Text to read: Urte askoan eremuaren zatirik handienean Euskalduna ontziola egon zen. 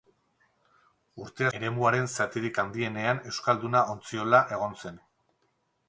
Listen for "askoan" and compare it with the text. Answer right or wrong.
wrong